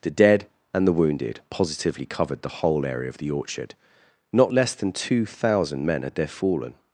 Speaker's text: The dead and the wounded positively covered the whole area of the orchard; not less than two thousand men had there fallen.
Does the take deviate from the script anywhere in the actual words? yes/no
no